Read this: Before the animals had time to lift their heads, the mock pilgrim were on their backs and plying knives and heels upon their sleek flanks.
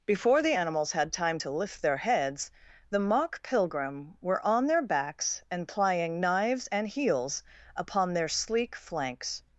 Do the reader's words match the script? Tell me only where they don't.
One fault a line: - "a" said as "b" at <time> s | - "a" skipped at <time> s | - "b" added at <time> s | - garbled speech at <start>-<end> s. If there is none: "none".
none